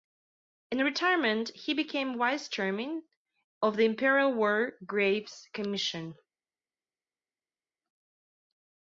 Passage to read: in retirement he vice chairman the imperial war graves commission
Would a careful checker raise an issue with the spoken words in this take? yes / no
yes